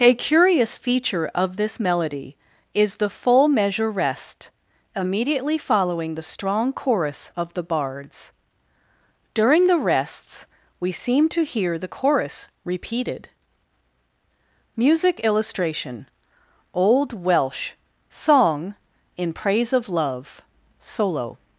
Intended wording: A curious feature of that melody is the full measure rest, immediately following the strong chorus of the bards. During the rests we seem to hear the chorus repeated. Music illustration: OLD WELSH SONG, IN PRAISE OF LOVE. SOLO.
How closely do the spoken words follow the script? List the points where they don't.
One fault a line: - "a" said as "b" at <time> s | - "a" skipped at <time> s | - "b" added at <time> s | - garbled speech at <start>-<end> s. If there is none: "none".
- "that" said as "this" at 1.6 s